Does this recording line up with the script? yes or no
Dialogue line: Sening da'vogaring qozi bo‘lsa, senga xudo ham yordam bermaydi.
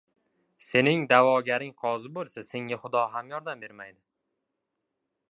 yes